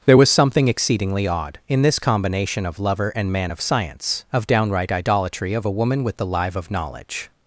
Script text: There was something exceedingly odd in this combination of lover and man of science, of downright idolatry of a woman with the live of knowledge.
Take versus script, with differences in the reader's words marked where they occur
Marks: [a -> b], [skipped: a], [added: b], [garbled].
There was something exceedingly odd in this combination of lover and man of science, of downright idolatry of a woman with the live of knowledge.